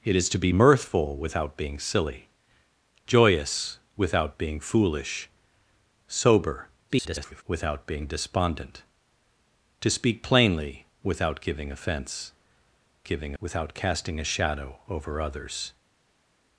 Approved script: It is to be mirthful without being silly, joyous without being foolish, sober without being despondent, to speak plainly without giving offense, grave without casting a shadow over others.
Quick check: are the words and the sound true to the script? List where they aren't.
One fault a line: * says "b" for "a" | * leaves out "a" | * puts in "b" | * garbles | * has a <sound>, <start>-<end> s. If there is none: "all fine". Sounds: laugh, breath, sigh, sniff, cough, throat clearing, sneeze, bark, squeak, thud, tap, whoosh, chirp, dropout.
* garbles
* says "giving" for "grave"